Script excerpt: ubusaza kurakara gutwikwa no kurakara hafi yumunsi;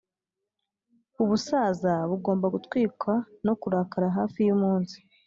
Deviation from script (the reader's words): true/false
true